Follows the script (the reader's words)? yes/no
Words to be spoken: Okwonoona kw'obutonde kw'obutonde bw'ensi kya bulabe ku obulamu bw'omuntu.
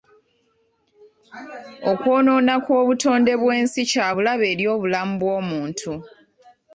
no